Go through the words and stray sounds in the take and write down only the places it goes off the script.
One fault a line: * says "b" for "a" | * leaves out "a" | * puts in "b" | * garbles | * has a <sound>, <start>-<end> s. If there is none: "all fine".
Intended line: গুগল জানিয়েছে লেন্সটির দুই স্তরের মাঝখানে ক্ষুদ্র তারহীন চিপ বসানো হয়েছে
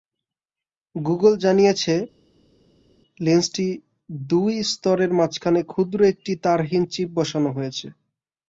* puts in "একটি"